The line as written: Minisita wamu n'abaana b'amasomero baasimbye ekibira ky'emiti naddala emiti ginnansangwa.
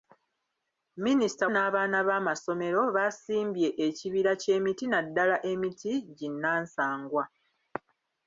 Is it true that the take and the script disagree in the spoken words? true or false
true